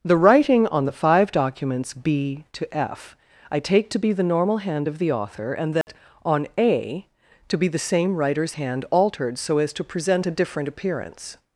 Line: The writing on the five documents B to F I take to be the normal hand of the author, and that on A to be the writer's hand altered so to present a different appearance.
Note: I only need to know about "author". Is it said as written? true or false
true